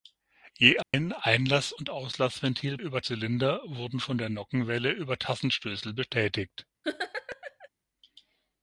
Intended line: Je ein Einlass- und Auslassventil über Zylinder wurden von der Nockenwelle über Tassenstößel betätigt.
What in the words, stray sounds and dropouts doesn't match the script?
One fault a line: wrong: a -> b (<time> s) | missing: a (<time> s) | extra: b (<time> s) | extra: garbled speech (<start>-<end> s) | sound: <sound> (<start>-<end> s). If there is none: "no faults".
sound: dropout (0.8-0.9 s)
sound: laugh (6.8-7.7 s)